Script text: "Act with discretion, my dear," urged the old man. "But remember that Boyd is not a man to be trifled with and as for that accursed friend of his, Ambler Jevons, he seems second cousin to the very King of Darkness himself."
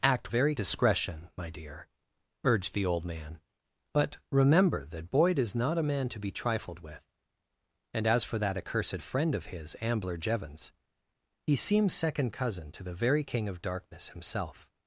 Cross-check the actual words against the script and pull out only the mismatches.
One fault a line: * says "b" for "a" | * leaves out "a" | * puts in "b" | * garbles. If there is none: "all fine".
* says "very" for "with"